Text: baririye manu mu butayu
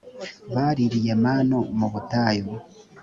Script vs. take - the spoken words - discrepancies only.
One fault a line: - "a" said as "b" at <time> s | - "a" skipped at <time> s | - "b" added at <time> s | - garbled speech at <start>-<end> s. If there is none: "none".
none